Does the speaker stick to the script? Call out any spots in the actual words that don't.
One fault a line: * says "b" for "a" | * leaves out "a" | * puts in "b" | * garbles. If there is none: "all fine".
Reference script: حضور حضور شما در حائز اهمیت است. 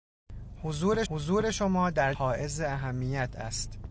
all fine